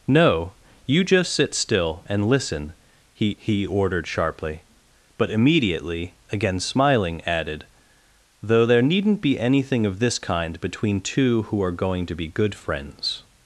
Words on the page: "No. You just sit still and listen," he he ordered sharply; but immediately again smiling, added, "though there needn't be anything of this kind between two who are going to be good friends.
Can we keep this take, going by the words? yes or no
yes